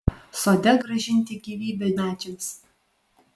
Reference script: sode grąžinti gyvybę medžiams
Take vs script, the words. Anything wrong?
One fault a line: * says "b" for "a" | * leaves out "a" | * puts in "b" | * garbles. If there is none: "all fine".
all fine